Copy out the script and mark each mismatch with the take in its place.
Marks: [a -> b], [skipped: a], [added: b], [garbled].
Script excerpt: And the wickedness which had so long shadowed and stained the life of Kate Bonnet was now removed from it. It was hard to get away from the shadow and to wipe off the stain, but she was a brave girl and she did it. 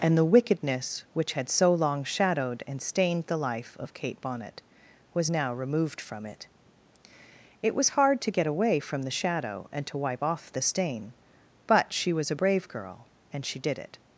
And the wickedness which had so long shadowed and stained the life of Kate Bonnet was now removed from it. It was hard to get away from the shadow and to wipe off the stain, but she was a brave girl and she did it.